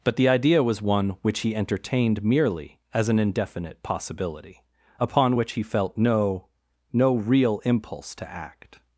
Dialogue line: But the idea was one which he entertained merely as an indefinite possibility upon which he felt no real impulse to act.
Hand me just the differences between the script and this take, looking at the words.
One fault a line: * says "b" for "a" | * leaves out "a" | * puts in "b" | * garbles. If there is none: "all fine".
* puts in "no"